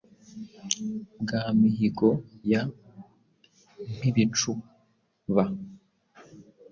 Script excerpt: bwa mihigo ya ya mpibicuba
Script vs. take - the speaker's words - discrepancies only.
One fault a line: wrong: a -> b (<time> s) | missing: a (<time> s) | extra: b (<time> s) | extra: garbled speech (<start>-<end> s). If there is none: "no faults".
missing: ya (2.6 s)